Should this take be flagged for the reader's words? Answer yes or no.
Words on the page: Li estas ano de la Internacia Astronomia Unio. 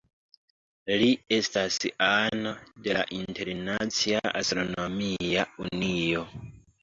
no